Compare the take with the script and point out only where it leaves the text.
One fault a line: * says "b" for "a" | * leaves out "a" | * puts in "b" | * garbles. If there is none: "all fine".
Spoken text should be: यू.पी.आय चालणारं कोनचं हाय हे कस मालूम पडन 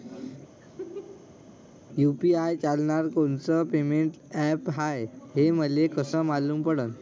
* puts in "पेमेंट ॲप"
* puts in "मले"